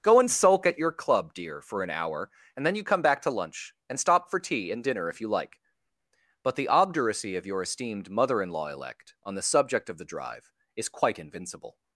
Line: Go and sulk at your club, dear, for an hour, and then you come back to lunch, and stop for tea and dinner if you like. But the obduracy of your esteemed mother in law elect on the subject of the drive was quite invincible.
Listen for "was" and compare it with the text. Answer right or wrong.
wrong